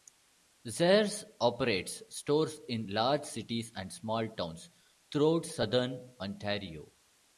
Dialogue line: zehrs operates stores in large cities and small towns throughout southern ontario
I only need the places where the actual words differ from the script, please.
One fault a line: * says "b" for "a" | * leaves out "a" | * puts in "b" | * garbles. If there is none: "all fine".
all fine